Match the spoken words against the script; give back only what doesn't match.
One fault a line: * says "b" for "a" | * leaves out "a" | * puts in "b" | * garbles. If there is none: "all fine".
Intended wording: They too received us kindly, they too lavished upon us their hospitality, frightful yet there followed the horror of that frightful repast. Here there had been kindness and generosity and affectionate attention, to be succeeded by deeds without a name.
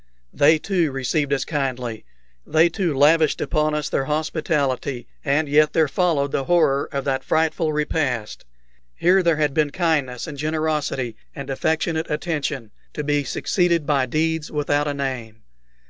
* says "and" for "frightful"